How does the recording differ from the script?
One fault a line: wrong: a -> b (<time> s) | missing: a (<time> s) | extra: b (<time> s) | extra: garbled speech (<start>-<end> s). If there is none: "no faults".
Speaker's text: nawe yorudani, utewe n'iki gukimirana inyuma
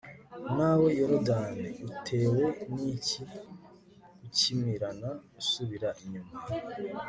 extra: usubira (5.4 s)